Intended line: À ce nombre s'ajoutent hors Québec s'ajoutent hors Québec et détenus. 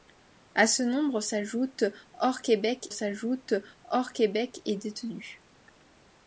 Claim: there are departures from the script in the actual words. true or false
false